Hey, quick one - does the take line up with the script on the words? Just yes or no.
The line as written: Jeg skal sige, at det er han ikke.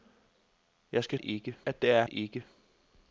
no